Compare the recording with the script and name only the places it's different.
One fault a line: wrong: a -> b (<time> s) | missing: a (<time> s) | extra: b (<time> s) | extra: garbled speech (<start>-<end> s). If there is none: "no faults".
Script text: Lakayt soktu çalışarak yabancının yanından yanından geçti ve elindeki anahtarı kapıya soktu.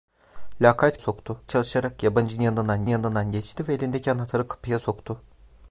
no faults